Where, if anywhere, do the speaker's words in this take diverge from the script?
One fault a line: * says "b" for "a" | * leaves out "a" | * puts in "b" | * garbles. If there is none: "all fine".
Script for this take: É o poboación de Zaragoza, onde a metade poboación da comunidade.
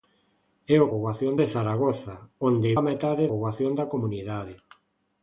all fine